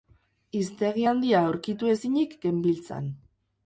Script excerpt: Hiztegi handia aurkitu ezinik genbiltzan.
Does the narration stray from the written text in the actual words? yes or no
no